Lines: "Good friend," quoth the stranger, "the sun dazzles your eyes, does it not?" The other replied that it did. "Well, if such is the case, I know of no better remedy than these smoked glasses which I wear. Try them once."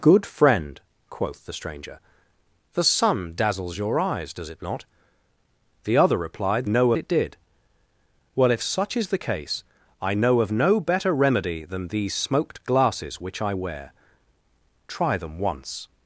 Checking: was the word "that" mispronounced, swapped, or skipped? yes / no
yes